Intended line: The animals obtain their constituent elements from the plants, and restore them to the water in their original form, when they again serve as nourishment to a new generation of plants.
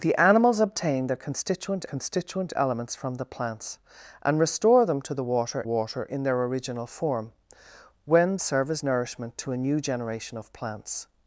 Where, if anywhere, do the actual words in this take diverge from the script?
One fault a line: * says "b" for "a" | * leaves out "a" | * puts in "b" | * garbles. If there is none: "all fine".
* puts in "constituent"
* puts in "water"
* leaves out "they again"